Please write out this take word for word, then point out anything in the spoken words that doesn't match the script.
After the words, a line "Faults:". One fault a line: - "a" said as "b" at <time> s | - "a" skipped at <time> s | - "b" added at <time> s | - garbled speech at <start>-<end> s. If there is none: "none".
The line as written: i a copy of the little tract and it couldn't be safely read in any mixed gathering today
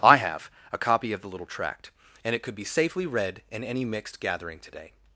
i have a copy of the little tract and it could be safely read in any mixed gathering today
Faults:
- "have" added at 0.2 s
- "couldn't" said as "could" at 2.4 s